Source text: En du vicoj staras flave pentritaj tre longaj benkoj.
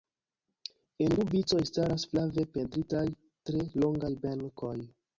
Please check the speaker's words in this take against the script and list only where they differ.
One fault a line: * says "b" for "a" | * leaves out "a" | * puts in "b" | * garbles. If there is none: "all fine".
all fine